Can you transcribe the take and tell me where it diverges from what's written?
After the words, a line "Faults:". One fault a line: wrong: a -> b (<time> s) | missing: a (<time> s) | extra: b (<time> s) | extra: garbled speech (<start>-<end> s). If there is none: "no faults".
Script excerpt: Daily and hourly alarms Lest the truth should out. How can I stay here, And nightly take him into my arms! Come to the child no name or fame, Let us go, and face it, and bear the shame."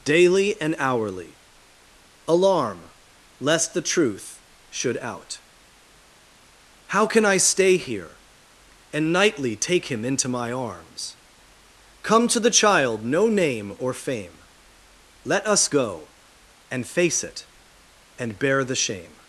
Daily and hourly alarm Lest the truth should out. How can I stay here, And nightly take him into my arms! Come to the child no name or fame, Let us go, and face it, and bear the shame."
Faults:
wrong: alarms -> alarm (2.3 s)